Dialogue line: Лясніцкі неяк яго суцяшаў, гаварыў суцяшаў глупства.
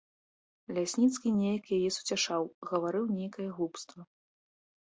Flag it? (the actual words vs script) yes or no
yes